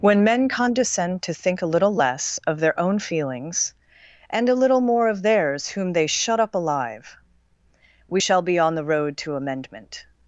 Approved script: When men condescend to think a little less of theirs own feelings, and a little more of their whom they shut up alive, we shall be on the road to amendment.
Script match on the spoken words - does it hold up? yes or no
no